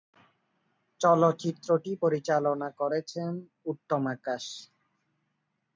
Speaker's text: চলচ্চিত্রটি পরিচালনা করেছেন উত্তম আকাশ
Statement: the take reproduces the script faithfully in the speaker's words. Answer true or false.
true